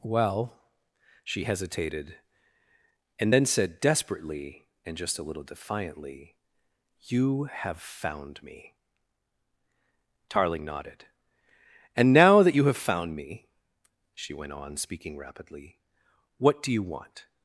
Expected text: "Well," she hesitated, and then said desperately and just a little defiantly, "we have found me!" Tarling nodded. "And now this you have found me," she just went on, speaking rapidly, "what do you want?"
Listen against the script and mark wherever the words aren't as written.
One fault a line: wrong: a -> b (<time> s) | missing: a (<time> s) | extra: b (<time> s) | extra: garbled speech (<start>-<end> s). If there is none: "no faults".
wrong: we -> you (7.0 s)
wrong: this -> that (12.4 s)
missing: just (14.3 s)